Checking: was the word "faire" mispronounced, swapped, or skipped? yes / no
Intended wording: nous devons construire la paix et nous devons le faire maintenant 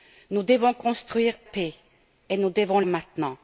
yes